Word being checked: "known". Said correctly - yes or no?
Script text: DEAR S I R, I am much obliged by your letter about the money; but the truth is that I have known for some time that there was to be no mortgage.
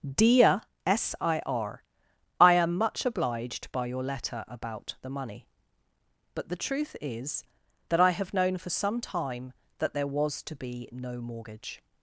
yes